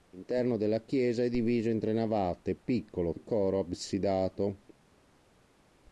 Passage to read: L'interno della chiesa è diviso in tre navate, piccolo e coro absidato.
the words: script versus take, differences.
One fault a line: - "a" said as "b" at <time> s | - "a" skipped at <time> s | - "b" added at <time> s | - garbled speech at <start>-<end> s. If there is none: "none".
none